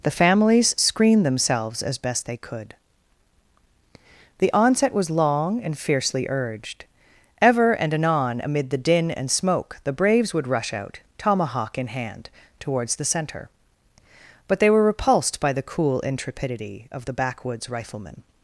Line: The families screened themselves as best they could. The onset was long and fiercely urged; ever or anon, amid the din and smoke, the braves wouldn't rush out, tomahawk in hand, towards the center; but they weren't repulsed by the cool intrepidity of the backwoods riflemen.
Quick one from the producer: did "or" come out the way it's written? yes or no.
no